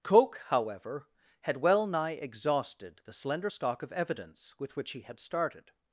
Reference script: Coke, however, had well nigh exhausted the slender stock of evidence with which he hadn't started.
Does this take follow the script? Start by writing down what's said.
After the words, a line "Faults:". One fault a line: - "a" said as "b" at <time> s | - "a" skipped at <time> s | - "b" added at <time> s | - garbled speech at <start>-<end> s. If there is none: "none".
Coke, however, had well nigh exhausted the slender stock of evidence with which he had started.
Faults:
- "hadn't" said as "had" at 5.0 s